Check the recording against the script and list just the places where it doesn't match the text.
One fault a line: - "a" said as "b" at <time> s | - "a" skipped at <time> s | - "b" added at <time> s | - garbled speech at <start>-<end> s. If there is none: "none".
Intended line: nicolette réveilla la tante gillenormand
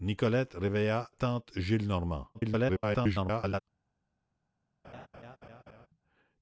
- "la" skipped at 1.1 s
- garbled speech at 2.3-3.6 s